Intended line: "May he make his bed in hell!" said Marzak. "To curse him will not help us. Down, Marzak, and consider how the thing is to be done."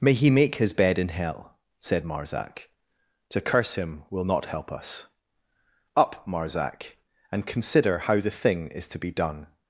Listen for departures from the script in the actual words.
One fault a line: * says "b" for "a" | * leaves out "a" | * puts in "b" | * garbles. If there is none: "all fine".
* says "Up" for "Down"